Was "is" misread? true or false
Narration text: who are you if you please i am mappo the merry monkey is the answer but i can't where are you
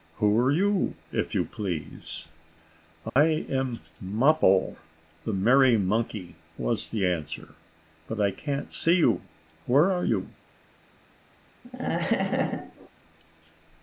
true